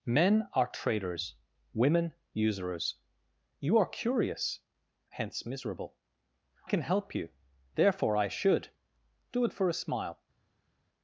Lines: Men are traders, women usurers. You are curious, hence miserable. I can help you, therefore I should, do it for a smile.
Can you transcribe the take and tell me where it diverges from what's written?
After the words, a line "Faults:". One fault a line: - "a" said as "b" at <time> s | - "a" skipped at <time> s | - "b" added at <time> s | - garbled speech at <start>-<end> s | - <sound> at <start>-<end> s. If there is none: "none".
Men are traders, women usurers. You are curious, hence miserable. can help you, therefore I should, do it for a smile.
Faults:
- "I" skipped at 6.0 s